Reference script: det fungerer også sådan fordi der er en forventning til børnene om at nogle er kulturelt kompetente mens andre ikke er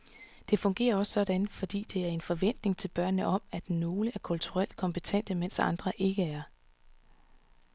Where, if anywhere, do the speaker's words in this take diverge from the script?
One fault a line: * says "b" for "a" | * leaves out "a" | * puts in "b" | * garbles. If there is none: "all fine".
all fine